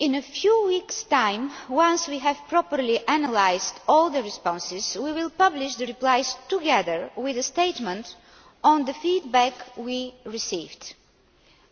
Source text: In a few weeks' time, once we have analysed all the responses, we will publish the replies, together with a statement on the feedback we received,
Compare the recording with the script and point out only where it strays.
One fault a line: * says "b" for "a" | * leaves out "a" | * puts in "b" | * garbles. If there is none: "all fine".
* puts in "properly"